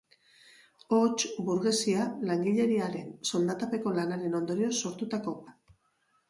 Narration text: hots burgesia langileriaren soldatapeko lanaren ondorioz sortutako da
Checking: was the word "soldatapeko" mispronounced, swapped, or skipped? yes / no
no